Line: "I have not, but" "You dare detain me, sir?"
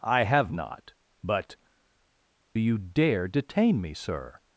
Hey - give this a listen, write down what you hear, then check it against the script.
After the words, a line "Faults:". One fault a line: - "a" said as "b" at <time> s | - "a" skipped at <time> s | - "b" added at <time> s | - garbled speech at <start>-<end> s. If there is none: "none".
"I have not, but" "You dare detain me, sir?"
Faults:
none